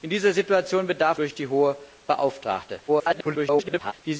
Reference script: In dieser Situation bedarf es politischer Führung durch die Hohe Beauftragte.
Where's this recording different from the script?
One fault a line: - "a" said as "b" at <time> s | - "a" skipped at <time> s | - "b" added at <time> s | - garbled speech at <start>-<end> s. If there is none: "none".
- "es politischer Führung" skipped at 1.2 s
- garbled speech at 2.9-3.9 s